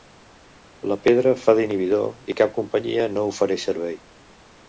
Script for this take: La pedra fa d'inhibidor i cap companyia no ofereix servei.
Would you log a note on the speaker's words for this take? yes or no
no